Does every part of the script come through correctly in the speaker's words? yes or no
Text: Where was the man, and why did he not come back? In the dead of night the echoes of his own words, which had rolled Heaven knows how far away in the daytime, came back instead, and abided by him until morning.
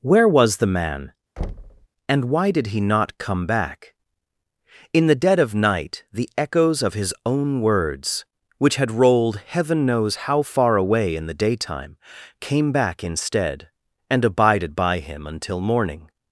yes